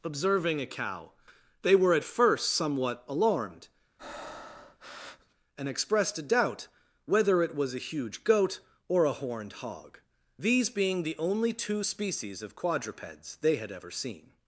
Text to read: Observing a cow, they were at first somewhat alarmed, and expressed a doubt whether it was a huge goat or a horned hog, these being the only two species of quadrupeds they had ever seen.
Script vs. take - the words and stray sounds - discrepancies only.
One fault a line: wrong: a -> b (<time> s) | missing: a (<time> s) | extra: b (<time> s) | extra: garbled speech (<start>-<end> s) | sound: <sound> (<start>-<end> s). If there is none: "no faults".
sound: breath (4.0-5.4 s)